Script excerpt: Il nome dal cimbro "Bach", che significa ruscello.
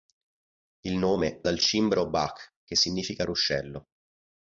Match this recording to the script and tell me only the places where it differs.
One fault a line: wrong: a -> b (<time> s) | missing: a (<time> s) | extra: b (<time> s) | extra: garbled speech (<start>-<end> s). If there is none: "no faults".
no faults